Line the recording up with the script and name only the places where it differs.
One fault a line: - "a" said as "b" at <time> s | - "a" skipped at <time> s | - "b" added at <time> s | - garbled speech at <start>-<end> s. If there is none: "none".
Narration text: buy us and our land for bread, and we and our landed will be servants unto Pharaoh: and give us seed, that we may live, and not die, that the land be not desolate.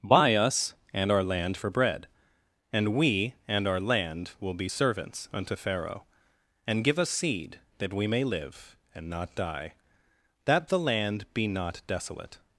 - "landed" said as "land" at 3.8 s